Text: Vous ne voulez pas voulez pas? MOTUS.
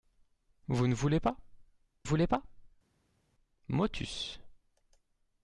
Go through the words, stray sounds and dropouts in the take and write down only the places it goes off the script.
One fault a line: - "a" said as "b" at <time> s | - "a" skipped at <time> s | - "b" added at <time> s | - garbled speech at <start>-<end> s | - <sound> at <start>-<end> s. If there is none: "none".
none